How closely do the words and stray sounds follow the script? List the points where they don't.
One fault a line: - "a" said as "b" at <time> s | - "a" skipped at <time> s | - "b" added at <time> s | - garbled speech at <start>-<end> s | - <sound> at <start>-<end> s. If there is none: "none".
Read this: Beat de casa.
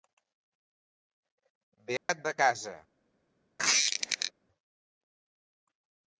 - dropout at 2.0-2.1 s
- squeak at 3.6-4.3 s